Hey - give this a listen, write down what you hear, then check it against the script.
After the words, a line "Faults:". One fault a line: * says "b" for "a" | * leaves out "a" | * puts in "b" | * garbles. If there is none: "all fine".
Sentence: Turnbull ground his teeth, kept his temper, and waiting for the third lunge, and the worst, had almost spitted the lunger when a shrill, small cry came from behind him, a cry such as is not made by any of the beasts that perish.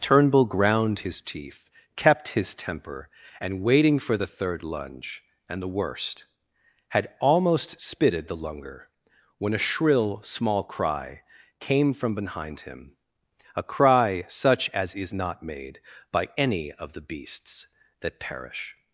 Turnbull ground his teeth, kept his temper, and waiting for the third lunge, and the worst, had almost spitted the lunger when a shrill, small cry came from behind him, a cry such as is not made by any of the beasts that perish.
Faults:
all fine